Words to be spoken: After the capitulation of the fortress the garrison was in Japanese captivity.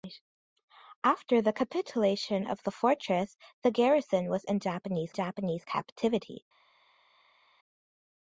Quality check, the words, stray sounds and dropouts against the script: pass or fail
fail